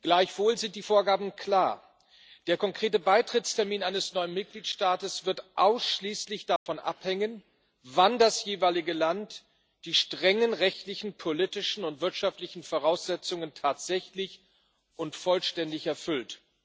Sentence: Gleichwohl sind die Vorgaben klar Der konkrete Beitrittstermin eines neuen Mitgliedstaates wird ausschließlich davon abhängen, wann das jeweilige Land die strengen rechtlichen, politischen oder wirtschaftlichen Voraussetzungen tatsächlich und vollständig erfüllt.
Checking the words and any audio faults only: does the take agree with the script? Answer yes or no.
no